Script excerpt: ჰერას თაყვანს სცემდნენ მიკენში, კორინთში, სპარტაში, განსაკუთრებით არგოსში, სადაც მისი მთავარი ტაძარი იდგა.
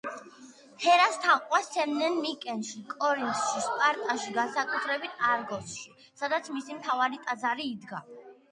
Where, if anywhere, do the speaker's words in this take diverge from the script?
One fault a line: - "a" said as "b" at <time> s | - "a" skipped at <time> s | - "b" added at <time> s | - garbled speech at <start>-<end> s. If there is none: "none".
none